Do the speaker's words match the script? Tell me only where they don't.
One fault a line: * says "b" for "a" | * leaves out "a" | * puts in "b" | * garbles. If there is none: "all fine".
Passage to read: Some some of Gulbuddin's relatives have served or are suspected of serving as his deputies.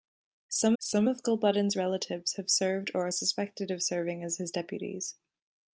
all fine